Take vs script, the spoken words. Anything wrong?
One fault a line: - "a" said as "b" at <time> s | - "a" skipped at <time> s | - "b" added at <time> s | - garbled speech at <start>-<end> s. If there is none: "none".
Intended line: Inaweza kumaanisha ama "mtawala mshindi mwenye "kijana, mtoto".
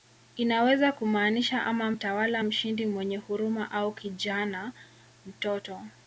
- "huruma au" added at 3.2 s